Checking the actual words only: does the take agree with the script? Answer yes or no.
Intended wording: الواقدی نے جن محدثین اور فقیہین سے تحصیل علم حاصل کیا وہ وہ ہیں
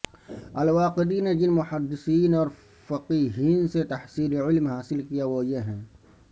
no